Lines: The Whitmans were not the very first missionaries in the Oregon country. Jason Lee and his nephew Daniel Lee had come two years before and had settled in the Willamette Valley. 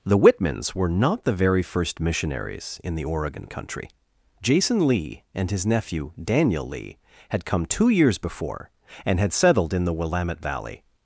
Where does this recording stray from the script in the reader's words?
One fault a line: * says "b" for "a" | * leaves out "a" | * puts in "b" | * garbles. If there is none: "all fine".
all fine